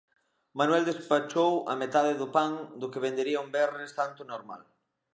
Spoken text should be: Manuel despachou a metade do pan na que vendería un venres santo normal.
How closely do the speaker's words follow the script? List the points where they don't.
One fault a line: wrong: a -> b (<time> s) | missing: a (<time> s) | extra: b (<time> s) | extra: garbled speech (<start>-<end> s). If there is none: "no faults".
wrong: na -> do (2.8 s)